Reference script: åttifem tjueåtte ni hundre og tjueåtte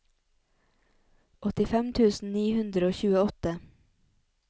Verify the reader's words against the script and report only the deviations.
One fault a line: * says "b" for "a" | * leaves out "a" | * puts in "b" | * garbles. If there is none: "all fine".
* says "tusen" for "tjueåtte"